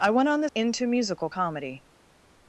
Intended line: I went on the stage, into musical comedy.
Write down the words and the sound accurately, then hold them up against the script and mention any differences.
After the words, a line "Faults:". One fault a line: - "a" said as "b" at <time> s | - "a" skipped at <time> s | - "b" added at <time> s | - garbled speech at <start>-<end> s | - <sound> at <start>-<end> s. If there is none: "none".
I went on the into musical comedy.
Faults:
- "stage" skipped at 0.5 s